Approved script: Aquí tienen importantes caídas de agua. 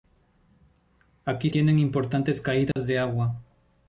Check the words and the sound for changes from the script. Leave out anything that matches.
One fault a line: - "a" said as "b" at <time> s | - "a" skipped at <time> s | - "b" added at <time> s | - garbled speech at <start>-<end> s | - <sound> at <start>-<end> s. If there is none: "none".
- dropout at 2.7-2.8 s